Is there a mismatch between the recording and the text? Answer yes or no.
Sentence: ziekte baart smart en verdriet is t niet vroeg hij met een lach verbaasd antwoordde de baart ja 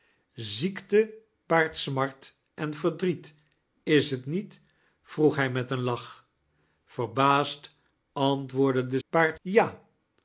no